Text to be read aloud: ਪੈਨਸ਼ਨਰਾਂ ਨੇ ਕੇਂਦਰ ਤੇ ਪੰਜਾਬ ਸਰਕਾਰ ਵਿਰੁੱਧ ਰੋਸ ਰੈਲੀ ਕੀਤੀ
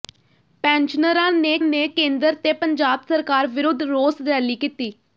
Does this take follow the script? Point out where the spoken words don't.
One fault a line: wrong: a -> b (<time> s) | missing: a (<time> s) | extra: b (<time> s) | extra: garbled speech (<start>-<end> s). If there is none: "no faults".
extra: ਨੇ (1.6 s)